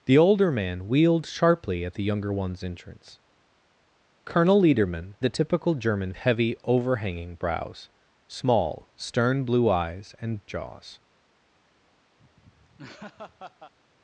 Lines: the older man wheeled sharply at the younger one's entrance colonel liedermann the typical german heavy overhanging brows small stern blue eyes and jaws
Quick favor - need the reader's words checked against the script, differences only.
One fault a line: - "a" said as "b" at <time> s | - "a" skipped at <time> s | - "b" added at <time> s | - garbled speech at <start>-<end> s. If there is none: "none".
none